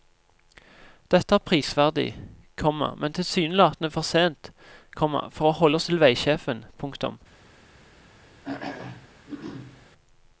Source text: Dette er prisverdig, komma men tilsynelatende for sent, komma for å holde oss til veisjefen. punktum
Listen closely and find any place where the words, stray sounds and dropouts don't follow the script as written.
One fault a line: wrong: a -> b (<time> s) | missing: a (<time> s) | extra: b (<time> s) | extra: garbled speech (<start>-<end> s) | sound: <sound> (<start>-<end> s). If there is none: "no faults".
sound: throat clearing (8.4-9.9 s)